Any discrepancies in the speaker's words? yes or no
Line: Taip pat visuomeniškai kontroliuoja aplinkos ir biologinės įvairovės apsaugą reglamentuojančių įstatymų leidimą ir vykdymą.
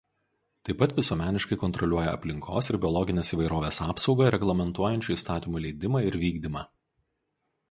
no